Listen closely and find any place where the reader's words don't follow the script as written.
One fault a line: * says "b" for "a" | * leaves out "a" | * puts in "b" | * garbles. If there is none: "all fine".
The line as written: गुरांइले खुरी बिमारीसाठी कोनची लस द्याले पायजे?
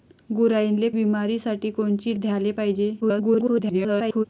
* leaves out "खुरी"
* leaves out "लस"
* garbles